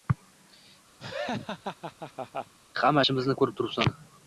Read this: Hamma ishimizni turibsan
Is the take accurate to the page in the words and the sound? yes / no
no